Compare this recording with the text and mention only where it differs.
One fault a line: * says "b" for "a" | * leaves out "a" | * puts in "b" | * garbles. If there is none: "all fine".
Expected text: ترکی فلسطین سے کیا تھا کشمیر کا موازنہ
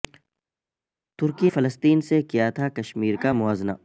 all fine